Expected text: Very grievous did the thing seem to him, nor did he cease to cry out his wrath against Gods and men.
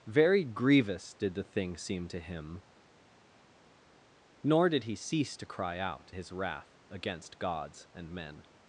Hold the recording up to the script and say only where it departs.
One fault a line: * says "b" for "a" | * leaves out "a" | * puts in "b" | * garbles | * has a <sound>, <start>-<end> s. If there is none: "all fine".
all fine